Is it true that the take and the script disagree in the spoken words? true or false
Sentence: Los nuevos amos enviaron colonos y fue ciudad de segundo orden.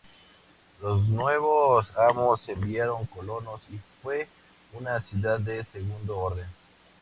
true